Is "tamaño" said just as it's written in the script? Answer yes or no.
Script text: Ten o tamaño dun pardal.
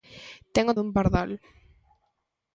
no